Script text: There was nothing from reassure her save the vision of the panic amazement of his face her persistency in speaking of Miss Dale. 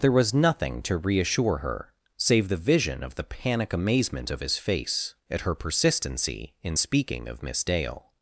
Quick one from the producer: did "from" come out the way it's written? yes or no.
no